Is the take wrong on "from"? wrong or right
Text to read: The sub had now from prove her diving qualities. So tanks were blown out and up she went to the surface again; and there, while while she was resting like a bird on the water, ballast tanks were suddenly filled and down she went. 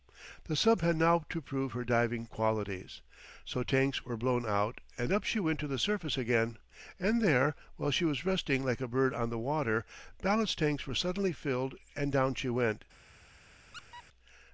wrong